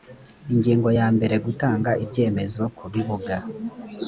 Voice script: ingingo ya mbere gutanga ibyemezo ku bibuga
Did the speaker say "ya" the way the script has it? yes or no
yes